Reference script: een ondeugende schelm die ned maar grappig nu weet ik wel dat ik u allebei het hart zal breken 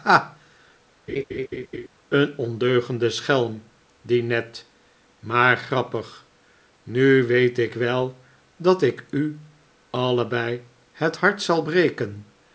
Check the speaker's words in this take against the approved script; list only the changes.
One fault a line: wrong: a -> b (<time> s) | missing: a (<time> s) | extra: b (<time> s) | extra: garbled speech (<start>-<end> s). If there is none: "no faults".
no faults